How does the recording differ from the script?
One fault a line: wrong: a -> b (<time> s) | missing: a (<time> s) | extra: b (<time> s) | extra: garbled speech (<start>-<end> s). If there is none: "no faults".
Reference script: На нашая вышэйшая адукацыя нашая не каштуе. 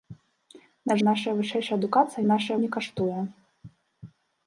no faults